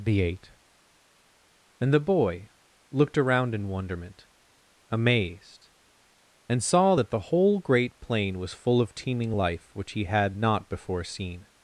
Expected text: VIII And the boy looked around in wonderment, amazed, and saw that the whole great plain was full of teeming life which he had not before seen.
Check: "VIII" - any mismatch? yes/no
yes